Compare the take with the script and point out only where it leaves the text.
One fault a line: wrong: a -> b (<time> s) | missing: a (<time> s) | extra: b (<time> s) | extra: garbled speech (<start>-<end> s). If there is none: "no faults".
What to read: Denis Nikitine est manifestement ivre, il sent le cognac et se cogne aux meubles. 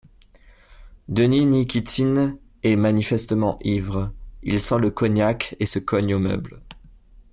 no faults